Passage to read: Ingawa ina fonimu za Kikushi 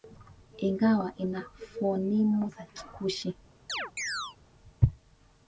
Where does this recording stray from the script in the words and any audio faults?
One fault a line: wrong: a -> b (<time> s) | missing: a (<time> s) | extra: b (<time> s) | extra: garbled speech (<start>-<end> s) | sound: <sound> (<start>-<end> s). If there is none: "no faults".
sound: chirp (3.7-4.4 s)